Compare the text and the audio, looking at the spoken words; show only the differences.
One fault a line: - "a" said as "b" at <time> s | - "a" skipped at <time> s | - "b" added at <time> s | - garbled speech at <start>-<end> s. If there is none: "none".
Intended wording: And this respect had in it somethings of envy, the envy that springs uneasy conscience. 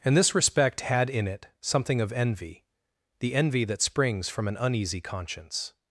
- "somethings" said as "something" at 1.6 s
- "from an" added at 4.3 s